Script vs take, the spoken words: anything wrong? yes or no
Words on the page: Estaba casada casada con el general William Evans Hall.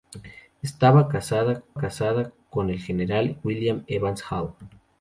no